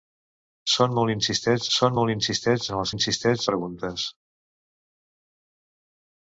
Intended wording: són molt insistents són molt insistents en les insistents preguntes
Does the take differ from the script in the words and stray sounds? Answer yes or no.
no